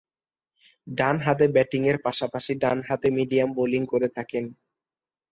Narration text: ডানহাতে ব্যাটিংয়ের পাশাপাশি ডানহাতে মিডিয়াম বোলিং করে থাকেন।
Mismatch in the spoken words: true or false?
false